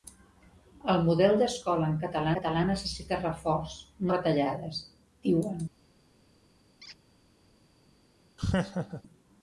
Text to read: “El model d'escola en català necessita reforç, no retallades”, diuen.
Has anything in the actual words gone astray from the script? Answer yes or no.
yes